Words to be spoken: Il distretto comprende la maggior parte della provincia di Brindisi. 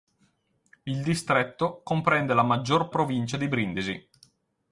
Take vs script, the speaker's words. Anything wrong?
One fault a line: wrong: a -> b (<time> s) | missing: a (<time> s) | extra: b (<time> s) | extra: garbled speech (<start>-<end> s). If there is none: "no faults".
missing: parte della (2.9 s)